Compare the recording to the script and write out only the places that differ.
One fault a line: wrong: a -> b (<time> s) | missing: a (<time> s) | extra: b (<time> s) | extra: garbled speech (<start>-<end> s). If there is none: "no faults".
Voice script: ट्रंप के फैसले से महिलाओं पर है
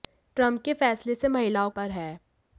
no faults